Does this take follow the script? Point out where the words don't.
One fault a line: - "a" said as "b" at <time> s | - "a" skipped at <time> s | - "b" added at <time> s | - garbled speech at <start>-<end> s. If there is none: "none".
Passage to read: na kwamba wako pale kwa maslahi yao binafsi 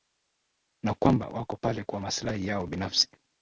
none